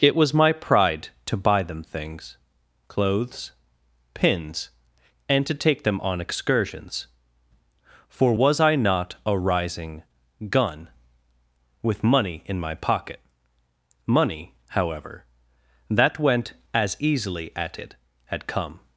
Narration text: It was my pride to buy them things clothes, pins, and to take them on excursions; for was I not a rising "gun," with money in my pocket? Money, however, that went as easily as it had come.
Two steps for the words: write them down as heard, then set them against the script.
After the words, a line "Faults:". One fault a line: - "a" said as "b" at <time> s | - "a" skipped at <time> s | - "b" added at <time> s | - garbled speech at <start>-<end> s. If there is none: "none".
It was my pride to buy them things clothes, pins, and to take them on excursions; for was I not a rising "gun," with money in my pocket? Money, however, that went as easily at it had come.
Faults:
- "as" said as "at" at 17.6 s